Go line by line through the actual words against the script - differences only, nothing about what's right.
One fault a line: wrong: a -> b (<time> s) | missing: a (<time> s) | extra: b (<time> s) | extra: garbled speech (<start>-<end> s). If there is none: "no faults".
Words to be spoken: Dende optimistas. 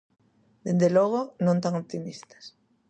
extra: logo non tan (1.0 s)